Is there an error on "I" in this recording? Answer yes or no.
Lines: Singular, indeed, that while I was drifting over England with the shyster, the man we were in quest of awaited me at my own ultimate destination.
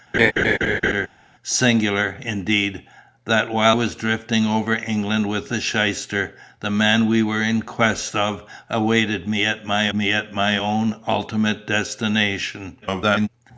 yes